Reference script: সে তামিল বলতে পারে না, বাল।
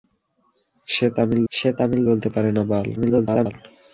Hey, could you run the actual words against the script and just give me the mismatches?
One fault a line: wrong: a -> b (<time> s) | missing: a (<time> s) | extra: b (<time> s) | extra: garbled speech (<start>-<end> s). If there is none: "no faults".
extra: সে তামিল (1.5 s)
extra: garbled speech (3.0-3.5 s)